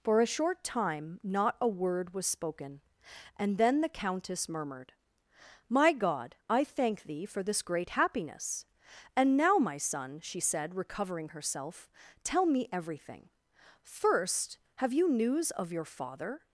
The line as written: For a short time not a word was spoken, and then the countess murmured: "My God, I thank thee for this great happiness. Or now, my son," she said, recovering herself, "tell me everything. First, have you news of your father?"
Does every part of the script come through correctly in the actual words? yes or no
no